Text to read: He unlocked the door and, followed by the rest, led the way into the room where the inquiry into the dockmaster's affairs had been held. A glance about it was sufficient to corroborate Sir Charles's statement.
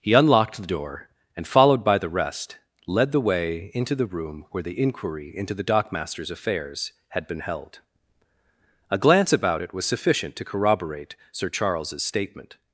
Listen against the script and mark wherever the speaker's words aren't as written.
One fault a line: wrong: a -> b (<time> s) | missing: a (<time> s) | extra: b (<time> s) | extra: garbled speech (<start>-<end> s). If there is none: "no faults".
no faults